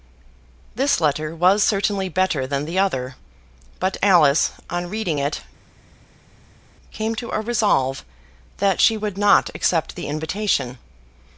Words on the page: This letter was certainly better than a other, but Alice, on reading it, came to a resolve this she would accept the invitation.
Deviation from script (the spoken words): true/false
true